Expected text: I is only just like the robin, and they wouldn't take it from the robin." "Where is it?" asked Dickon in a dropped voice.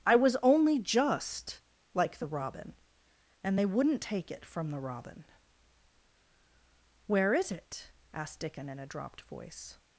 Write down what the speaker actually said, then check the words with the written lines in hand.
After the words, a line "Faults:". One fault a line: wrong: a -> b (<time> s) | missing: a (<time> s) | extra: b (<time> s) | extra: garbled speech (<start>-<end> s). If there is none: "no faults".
I was only just like the robin, and they wouldn't take it from the robin." "Where is it?" asked Dickon in a dropped voice.
Faults:
wrong: is -> was (0.1 s)